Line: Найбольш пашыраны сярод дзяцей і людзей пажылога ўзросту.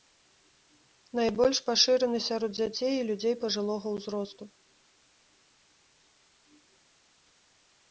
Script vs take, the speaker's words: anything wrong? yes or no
no